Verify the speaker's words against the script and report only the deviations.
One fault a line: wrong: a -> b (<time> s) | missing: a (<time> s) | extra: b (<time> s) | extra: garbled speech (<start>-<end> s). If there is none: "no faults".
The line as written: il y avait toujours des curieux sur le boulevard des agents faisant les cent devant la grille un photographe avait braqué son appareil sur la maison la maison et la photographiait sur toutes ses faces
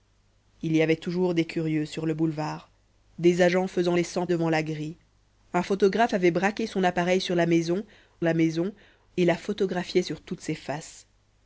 no faults